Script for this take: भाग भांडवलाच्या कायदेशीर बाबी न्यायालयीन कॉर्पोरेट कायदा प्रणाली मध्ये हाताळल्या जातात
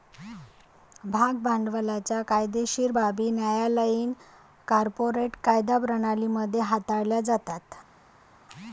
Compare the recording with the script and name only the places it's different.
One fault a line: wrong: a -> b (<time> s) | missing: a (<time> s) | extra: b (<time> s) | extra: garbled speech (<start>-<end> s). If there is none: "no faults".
no faults